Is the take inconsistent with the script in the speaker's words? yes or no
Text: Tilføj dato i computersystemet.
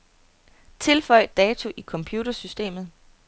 no